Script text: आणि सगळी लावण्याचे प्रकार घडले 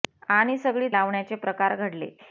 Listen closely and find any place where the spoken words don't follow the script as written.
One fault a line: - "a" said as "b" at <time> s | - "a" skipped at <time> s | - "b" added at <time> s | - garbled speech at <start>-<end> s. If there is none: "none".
none